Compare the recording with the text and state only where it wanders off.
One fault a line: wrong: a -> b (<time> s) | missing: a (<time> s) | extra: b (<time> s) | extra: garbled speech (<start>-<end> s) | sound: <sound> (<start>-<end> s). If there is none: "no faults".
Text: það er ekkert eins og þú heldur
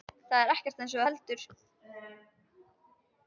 no faults